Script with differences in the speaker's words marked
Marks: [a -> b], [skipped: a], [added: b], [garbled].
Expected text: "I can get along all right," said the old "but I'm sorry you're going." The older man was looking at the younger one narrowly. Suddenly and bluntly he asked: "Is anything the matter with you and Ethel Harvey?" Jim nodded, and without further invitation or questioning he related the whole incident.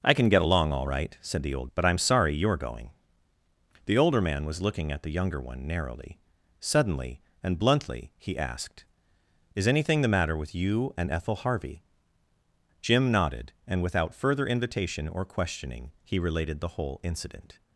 "I can get along all right," said the old "but I'm sorry you're going." The older man was looking at the younger one narrowly. Suddenly and bluntly he asked: "Is anything the matter with you and Ethel Harvey?" Jim nodded, and without further invitation or questioning he related the whole incident.